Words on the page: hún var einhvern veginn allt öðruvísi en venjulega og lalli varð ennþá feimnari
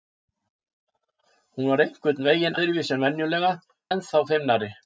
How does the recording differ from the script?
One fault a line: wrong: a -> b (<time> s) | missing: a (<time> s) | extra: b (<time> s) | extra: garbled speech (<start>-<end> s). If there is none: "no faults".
missing: allt (2.6 s)
missing: og lalli varð (3.5 s)